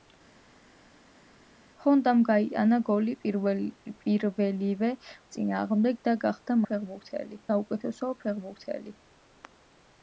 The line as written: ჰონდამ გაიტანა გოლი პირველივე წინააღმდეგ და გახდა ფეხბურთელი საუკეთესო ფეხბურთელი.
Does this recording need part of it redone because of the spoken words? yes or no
no